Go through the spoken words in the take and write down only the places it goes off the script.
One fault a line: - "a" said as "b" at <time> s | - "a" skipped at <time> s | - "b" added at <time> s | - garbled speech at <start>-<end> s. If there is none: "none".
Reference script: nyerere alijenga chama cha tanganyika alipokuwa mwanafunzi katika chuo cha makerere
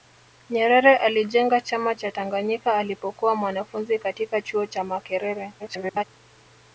- garbled speech at 5.6-6.0 s